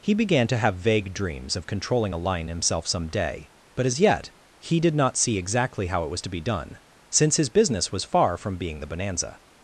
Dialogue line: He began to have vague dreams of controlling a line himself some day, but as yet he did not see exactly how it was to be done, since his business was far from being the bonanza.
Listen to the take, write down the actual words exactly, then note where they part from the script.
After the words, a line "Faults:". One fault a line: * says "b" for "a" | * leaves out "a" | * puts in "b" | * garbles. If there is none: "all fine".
He began to have vague dreams of controlling a line himself some day, but as yet he did not see exactly how it was to be done, since his business was far from being the bonanza.
Faults:
all fine